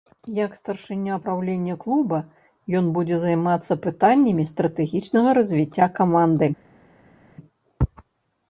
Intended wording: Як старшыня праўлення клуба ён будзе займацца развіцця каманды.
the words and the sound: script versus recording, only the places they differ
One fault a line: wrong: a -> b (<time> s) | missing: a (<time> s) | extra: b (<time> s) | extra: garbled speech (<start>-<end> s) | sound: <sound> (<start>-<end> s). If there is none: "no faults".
extra: пытаннямі стратэгічнага (3.9 s)